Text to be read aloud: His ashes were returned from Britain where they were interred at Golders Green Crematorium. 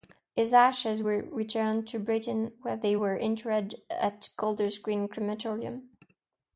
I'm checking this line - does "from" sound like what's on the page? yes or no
no